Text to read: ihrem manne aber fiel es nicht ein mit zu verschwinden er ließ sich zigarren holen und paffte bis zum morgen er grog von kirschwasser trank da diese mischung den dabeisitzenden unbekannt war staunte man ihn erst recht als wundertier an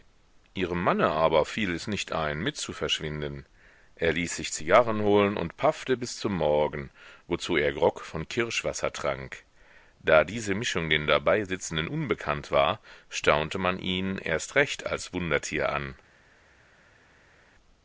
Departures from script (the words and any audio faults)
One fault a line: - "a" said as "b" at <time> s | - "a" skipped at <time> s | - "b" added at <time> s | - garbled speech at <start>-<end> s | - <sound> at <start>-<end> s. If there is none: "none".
- "wozu" added at 7.3 s